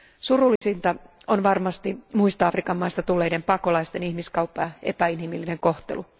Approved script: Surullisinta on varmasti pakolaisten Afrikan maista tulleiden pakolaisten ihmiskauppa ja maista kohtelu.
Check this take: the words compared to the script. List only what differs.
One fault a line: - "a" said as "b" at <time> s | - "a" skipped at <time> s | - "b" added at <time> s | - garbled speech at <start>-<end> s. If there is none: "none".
- "pakolaisten" said as "muista" at 2.1 s
- "maista" said as "epäinhimillinen" at 4.8 s